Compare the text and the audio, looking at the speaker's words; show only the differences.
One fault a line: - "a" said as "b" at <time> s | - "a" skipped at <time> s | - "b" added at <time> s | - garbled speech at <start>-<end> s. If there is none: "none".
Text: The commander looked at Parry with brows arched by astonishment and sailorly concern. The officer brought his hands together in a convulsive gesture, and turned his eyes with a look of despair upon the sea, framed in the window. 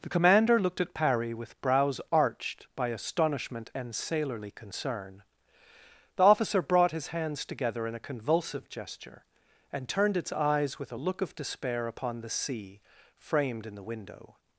- "his" said as "its" at 10.2 s